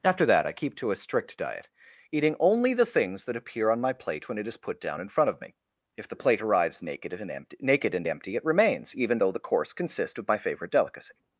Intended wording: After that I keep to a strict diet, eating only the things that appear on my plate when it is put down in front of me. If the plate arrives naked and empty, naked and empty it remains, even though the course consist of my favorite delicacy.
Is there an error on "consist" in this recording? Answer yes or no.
yes